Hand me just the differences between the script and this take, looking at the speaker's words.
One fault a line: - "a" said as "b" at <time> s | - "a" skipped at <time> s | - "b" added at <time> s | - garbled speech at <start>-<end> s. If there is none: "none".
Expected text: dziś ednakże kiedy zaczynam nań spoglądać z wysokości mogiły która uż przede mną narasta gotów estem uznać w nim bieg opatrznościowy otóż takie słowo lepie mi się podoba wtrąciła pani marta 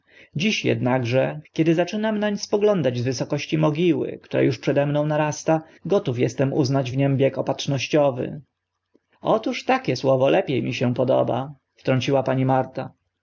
none